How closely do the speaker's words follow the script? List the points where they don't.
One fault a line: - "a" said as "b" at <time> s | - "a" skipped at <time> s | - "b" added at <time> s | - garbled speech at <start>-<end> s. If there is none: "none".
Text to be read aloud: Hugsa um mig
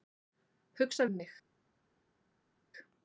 none